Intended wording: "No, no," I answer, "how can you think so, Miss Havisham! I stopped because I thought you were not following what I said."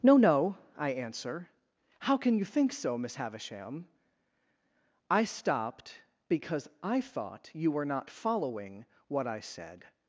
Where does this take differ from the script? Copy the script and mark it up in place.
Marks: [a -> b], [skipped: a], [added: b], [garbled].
"No, no," I answer, "how can you think so, Miss Havisham! I stopped because I thought you were not following what I said."